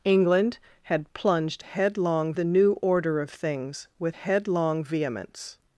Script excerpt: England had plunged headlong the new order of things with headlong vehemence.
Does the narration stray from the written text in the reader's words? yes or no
no